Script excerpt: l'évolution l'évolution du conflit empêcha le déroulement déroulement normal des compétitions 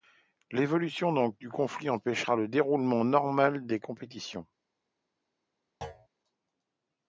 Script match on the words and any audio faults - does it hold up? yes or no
no